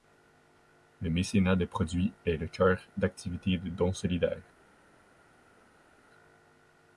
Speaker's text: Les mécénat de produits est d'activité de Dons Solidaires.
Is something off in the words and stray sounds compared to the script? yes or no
yes